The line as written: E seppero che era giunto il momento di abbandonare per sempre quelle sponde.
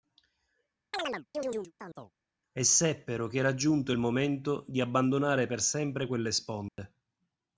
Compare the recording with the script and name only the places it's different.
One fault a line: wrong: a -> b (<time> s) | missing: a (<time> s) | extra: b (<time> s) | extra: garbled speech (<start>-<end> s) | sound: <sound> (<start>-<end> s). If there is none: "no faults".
sound: chirp (0.9-2.1 s)
sound: dropout (6.7-6.8 s)